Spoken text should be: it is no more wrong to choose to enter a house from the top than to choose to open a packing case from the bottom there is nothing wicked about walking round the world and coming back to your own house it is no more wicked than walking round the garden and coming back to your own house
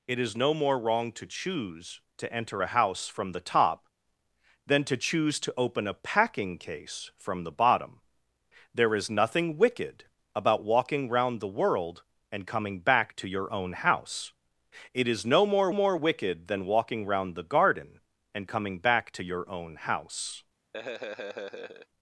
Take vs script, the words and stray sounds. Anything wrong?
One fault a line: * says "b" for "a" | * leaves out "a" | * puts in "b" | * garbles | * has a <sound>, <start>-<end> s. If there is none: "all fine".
* puts in "more"
* has a laugh, 20.7-21.9 s